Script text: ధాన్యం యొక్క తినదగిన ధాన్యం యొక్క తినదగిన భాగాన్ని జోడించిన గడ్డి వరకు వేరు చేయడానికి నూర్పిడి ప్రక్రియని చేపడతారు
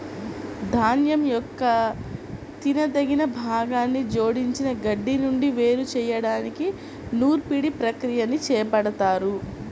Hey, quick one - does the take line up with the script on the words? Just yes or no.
no